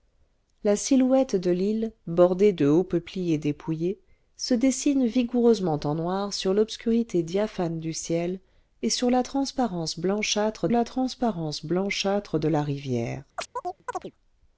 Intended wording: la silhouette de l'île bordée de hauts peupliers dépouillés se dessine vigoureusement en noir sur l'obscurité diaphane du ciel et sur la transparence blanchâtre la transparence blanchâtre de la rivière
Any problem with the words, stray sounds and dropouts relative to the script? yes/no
yes